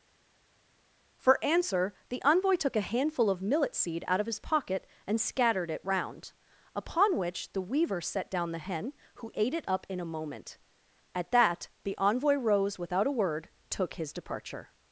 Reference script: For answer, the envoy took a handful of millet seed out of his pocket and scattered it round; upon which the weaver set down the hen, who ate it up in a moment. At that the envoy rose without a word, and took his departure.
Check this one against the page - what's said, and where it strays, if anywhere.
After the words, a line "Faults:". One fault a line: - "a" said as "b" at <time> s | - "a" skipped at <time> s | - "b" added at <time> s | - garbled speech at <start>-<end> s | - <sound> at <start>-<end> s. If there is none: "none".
For answer, the envoy took a handful of millet seed out of his pocket and scattered it round; upon which the weaver set down the hen, who ate it up in a moment. At that the envoy rose without a word, took his departure.
Faults:
- "and" skipped at 13.5 s